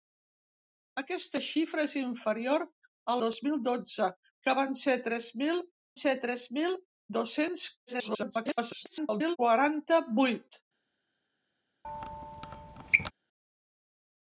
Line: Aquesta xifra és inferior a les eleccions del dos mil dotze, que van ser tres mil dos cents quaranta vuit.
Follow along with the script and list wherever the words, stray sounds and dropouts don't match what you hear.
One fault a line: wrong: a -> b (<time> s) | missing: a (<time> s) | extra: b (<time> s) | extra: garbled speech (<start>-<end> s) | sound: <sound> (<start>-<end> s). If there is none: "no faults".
missing: les eleccions del (3.1 s)
extra: ser tres mil (6.0 s)
extra: garbled speech (7.9-9.4 s)
sound: squeak (11.8-13.1 s)